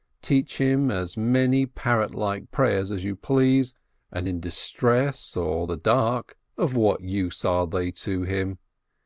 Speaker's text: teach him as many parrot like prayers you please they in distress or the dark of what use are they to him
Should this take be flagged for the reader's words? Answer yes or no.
yes